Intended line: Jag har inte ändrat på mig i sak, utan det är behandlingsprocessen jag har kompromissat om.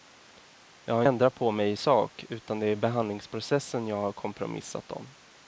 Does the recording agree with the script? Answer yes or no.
no